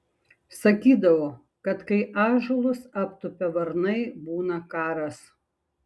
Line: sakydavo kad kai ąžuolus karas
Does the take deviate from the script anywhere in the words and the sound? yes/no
yes